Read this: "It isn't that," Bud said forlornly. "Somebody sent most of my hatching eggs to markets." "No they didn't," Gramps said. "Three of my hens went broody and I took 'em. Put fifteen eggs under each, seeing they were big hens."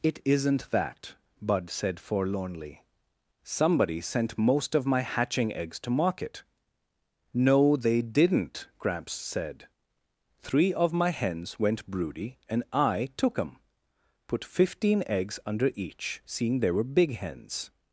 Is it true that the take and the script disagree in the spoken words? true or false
true